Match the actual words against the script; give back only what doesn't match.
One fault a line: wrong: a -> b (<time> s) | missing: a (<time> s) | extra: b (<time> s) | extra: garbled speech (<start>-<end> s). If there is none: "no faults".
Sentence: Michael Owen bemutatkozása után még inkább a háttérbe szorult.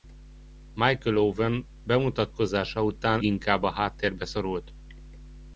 missing: még (3.2 s)